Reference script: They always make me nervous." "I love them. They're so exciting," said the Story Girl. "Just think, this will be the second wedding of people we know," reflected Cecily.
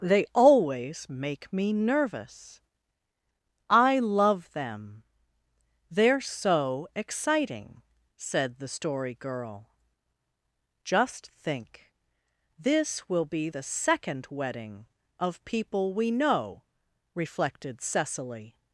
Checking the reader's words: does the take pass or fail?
pass